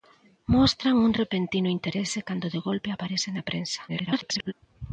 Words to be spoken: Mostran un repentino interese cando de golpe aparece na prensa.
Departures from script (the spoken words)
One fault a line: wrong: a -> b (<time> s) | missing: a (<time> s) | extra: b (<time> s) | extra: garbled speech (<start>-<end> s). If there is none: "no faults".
extra: garbled speech (3.9-4.5 s)